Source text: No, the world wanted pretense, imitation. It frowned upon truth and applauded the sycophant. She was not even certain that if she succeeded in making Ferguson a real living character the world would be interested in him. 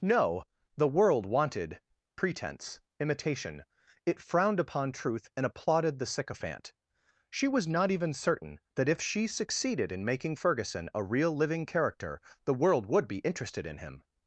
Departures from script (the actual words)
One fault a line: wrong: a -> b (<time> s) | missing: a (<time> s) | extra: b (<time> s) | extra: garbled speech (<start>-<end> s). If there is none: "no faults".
no faults